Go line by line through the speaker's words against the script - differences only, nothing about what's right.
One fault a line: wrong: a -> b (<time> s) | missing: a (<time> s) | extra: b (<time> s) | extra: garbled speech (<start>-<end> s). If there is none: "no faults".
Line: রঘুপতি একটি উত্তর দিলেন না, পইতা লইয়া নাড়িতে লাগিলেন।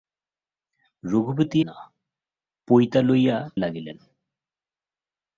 missing: একটি উত্তর দিলেন (1.6 s)
missing: নাড়িতে (3.4 s)